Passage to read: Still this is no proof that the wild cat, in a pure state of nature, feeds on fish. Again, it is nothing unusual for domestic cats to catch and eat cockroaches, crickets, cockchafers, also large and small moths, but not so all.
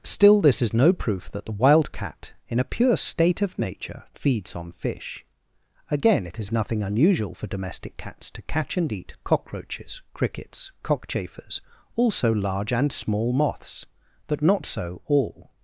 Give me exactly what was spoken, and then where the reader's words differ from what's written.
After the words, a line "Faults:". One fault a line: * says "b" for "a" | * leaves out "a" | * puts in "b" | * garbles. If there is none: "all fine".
Still this is no proof that the wild cat, in a pure state of nature, feeds on fish. Again, it is nothing unusual for domestic cats to catch and eat cockroaches, crickets, cockchafers, also large and small moths, but not so all.
Faults:
all fine